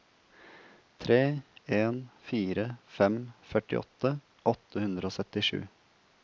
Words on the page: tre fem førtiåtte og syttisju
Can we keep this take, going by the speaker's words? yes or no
no